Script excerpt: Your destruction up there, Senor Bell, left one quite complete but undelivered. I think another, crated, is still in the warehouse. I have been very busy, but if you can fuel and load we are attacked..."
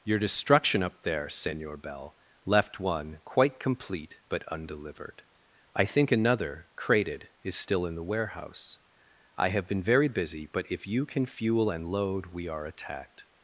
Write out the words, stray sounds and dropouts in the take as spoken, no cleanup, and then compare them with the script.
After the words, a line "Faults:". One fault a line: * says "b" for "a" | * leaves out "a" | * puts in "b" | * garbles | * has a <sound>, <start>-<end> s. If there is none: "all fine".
Your destruction up there, Senor Bell, left one quite complete but undelivered. I think another, crated, is still in the warehouse. I have been very busy, but if you can fuel and load we are attacked..."
Faults:
all fine